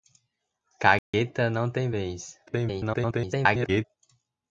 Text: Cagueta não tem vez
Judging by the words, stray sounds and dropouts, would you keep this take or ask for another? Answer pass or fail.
fail